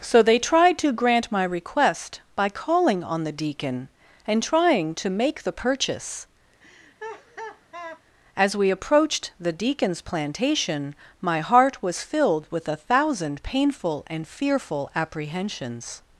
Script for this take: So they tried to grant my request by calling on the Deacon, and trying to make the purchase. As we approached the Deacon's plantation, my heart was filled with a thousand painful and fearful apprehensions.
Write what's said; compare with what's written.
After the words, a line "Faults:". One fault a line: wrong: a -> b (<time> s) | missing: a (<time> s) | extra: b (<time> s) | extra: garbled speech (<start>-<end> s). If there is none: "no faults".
So they tried to grant my request by calling on the Deacon, and trying to make the purchase. As we approached the Deacon's plantation, my heart was filled with a thousand painful and fearful apprehensions.
Faults:
no faults